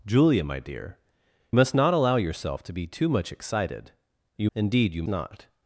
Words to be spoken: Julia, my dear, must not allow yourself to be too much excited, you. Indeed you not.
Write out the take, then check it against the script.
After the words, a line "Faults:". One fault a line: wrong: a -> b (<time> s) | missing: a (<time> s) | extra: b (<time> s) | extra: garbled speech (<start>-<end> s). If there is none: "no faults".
Julia, my dear, must not allow yourself to be too much excited, you. Indeed you not.
Faults:
no faults